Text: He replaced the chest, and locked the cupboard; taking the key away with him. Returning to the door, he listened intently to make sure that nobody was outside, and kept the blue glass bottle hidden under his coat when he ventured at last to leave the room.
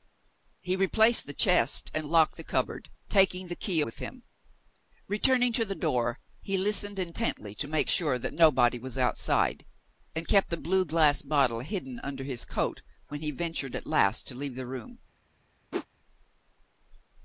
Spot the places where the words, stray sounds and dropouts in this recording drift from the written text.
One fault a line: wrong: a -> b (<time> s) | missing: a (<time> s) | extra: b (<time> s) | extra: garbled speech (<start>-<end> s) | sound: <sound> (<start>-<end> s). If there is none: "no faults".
missing: away (3.8 s)
sound: whoosh (15.7-15.9 s)